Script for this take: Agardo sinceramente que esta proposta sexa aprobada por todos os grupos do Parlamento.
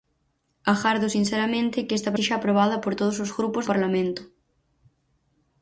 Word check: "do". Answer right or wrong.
wrong